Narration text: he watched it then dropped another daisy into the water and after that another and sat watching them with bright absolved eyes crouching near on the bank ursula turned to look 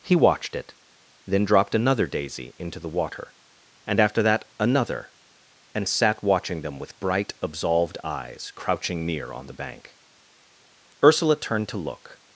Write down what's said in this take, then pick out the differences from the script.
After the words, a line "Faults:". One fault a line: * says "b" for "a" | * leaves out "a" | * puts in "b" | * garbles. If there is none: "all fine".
he watched it then dropped another daisy into the water and after that another and sat watching them with bright absolved eyes crouching near on the bank ursula turned to look
Faults:
all fine